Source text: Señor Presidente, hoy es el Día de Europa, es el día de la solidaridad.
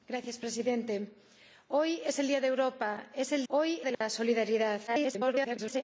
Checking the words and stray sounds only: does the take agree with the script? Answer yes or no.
no